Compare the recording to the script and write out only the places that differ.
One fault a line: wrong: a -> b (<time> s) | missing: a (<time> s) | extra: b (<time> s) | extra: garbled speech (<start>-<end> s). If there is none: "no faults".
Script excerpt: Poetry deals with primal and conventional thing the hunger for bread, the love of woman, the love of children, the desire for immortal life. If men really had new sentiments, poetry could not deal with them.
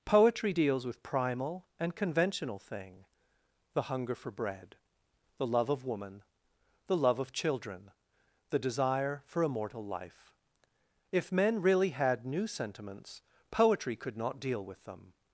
no faults